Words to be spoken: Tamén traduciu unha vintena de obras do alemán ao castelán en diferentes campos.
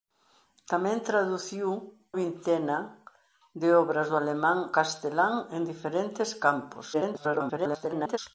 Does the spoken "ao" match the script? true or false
false